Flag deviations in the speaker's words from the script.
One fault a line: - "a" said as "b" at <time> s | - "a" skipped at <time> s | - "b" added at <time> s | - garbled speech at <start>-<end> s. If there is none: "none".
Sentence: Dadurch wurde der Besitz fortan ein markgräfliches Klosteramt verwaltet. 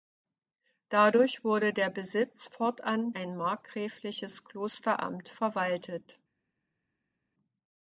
none